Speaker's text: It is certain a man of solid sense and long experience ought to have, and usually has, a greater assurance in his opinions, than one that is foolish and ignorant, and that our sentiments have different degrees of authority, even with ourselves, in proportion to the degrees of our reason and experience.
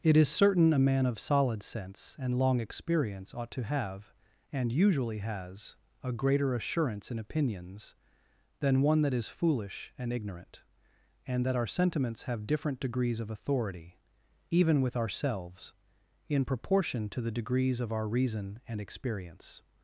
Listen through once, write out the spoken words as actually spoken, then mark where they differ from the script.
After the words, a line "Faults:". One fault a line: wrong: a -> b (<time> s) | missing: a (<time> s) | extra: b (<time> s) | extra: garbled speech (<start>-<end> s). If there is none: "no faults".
It is certain a man of solid sense and long experience ought to have, and usually has, a greater assurance in opinions, than one that is foolish and ignorant, and that our sentiments have different degrees of authority, even with ourselves, in proportion to the degrees of our reason and experience.
Faults:
missing: his (7.2 s)